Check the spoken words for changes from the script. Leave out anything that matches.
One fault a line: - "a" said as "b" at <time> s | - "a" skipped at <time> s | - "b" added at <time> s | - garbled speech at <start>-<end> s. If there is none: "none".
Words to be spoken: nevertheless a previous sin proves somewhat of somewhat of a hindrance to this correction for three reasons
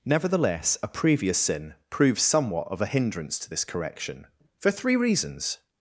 - "somewhat of" skipped at 2.8 s